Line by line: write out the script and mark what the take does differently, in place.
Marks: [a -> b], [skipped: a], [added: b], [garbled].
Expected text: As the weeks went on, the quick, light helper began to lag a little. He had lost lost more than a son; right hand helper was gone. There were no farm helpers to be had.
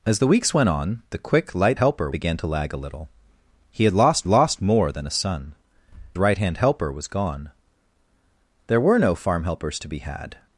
As the weeks went on, the quick, light helper began to lag a little. He had lost lost more than a son; right hand helper was gone. There were no farm helpers to be had.